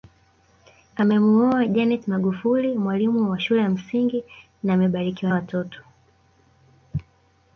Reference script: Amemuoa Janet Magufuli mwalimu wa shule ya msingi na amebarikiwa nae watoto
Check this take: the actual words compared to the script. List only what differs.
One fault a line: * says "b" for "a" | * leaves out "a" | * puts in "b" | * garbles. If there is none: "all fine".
* leaves out "nae"